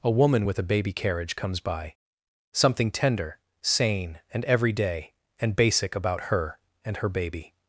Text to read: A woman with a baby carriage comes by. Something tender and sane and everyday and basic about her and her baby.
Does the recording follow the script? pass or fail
fail